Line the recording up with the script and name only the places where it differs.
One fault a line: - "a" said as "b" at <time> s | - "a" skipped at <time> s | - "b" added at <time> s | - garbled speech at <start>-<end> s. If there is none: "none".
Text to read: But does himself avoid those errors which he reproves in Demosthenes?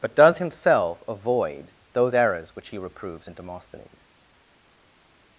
none